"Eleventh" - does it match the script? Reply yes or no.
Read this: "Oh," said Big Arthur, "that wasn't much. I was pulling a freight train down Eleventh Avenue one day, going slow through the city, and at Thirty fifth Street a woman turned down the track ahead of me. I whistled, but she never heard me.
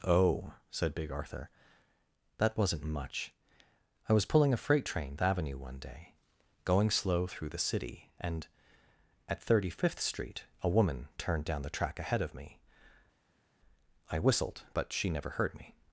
no